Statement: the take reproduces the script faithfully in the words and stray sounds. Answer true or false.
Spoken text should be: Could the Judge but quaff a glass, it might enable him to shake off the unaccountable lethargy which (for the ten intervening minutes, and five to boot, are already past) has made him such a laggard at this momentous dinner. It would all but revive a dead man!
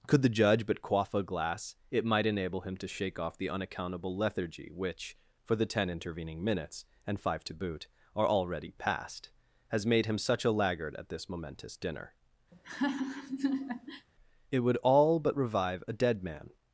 false